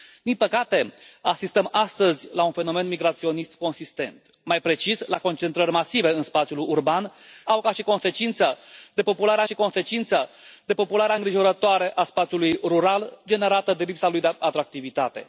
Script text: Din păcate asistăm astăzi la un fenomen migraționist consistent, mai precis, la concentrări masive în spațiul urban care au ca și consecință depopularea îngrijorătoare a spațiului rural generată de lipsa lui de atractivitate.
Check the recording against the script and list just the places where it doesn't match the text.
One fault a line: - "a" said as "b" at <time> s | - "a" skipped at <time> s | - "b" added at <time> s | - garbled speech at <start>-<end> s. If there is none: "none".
- "care" skipped at 7.1 s
- "și consecință depopularea" added at 9.4 s